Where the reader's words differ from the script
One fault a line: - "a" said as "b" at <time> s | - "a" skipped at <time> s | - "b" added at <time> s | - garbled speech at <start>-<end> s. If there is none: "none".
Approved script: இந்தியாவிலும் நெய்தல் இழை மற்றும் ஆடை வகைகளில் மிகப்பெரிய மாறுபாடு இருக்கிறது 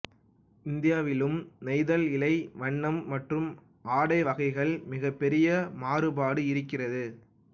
- "வண்ணம்" added at 2.5 s